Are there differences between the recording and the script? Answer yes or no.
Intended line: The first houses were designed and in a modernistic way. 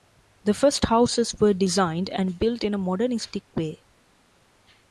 yes